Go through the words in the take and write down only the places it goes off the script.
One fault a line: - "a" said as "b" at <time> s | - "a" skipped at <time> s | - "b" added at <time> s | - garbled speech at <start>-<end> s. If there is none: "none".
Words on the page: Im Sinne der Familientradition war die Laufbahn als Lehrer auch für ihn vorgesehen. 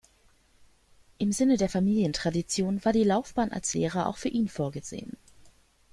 none